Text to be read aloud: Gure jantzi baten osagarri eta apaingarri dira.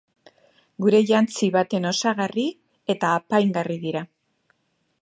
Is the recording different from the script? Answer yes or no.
no